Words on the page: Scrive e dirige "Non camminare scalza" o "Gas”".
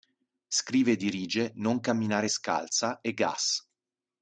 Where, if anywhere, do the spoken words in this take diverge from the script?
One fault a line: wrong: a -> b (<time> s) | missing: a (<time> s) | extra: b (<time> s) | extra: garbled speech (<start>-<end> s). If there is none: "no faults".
wrong: o -> e (3.0 s)